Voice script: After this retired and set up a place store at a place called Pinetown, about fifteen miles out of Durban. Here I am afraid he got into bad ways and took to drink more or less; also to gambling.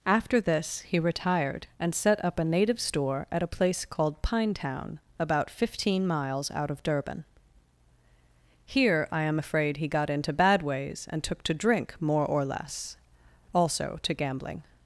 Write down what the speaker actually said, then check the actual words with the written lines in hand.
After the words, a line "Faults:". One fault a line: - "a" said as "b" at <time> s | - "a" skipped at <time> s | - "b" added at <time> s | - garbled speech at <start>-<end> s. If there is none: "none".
After this he retired and set up a native store at a place called Pinetown, about fifteen miles out of Durban. Here I am afraid he got into bad ways and took to drink more or less; also to gambling.
Faults:
- "he" added at 0.8 s
- "place" said as "native" at 2.5 s